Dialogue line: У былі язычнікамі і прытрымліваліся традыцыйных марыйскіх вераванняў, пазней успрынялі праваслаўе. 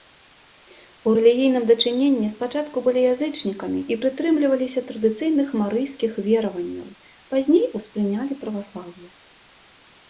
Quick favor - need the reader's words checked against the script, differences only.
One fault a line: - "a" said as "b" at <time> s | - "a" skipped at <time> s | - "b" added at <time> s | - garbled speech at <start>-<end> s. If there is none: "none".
- "рэлігійным дачыненні спачатку" added at 1.2 s